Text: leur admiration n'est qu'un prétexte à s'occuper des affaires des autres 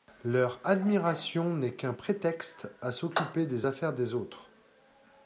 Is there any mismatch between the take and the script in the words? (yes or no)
no